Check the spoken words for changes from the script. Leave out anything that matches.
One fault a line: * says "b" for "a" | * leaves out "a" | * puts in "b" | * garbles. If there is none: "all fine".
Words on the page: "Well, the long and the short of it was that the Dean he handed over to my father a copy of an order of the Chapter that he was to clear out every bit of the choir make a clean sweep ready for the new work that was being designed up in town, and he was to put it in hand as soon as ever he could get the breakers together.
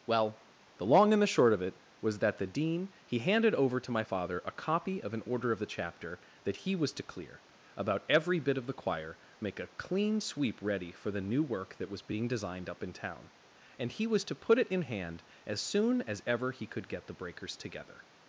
* says "about" for "out"